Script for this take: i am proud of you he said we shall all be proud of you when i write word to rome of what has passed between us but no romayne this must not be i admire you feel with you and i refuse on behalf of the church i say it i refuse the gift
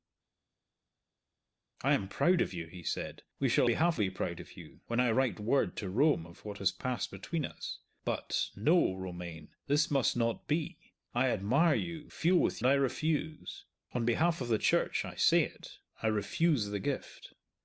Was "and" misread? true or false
true